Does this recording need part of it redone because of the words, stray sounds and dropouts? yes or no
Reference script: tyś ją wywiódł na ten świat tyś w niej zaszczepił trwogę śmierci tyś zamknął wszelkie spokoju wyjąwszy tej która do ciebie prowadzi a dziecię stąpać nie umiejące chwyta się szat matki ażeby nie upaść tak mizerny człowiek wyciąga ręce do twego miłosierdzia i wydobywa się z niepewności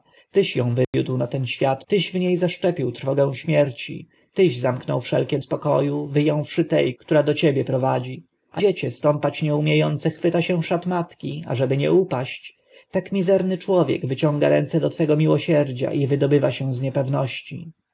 yes